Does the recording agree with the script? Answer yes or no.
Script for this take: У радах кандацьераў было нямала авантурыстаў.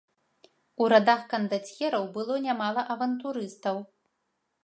yes